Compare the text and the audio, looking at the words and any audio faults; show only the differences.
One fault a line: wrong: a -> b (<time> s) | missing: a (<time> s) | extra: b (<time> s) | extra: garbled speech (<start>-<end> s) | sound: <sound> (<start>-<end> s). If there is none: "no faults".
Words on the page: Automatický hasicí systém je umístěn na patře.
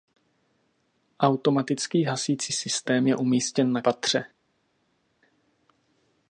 no faults